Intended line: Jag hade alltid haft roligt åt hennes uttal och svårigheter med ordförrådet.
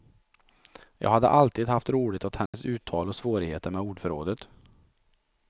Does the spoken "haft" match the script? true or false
true